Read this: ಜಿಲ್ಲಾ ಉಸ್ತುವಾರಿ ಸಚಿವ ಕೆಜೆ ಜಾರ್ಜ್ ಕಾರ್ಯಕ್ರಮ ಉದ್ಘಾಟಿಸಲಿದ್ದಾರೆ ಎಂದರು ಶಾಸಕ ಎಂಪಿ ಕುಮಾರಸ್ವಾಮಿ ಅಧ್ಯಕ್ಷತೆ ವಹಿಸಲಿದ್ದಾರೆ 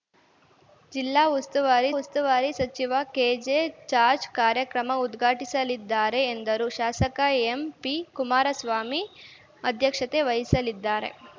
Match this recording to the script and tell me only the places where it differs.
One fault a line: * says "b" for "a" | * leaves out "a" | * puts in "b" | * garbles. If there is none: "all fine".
* puts in "ಉಸ್ತುವಾರಿ"